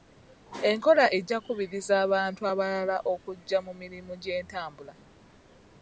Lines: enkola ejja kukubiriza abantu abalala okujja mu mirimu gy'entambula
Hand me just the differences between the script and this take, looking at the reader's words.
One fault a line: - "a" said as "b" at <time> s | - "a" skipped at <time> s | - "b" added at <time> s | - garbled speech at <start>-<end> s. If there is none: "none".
none